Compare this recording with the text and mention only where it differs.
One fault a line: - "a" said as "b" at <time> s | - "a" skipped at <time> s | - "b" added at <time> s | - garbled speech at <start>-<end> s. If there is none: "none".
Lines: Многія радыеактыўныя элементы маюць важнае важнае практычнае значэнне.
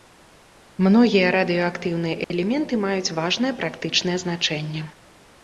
- "важнае" skipped at 3.5 s